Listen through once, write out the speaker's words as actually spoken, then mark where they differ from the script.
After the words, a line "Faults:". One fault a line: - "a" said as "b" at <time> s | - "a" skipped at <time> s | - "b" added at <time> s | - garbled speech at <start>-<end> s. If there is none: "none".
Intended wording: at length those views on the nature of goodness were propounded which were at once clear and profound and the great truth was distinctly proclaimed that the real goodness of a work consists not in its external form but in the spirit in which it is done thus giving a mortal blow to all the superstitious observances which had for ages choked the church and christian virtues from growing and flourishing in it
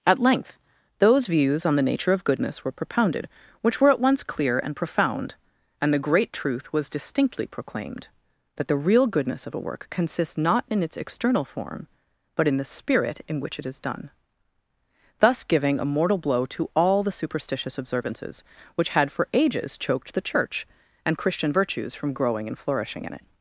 at length those views on the nature of goodness were propounded which were at once clear and profound and the great truth was distinctly proclaimed that the real goodness of a work consists not in its external form but in the spirit in which it is done thus giving a mortal blow to all the superstitious observances which had for ages choked the church and christian virtues from growing and flourishing in it
Faults:
none